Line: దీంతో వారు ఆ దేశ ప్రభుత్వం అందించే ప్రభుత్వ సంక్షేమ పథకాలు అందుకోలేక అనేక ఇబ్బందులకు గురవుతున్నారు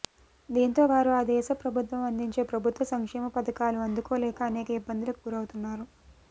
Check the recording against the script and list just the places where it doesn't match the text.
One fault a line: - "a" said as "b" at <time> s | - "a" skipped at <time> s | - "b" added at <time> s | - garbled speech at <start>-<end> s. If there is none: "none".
none